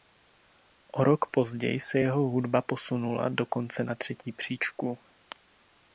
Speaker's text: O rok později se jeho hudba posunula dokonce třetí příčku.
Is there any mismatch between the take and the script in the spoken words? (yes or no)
yes